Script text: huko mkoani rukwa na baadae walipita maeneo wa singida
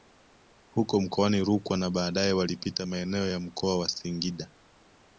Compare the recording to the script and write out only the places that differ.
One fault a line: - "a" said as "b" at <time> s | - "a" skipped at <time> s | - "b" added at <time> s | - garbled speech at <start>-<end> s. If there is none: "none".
- "ya mkoa" added at 3.3 s